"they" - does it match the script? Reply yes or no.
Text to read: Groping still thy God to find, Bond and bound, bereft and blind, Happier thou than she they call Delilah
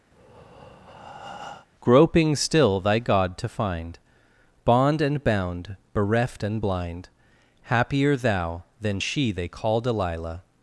yes